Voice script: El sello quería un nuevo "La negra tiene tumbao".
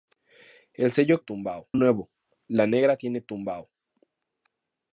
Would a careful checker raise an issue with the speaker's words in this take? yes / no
yes